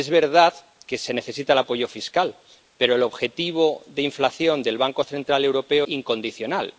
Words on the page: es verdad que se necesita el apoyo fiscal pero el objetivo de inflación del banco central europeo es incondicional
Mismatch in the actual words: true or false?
true